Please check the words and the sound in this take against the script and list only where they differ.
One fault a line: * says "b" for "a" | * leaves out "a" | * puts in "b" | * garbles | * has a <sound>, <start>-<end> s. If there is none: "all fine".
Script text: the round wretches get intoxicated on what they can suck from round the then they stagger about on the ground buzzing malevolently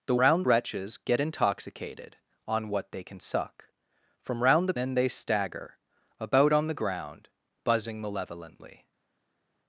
all fine